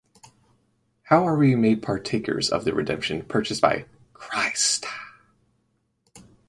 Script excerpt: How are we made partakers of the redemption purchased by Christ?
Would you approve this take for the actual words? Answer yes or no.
yes